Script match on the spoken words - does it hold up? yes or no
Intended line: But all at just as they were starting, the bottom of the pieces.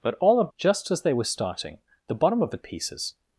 yes